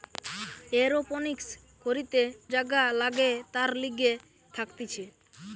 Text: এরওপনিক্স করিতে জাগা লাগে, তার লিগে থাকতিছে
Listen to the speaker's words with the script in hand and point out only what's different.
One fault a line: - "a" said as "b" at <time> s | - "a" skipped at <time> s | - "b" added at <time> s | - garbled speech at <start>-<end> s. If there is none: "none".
none